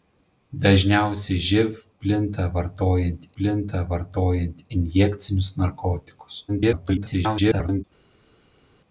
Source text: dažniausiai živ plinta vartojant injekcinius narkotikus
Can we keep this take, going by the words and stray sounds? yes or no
no